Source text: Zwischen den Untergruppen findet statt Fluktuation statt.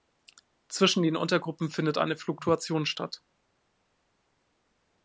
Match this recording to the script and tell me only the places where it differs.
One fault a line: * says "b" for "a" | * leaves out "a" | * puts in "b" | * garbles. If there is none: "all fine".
* says "eine" for "statt"